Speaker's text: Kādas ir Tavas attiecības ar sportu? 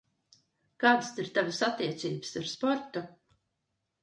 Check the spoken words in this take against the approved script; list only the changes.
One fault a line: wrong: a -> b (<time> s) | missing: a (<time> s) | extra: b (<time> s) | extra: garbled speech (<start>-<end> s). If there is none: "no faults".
no faults